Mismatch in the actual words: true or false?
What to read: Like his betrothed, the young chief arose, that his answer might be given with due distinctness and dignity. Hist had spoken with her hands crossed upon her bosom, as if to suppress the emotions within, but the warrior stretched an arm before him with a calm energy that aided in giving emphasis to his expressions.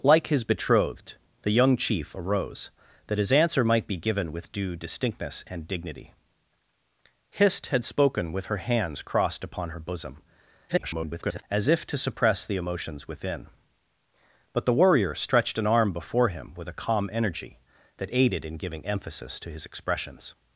true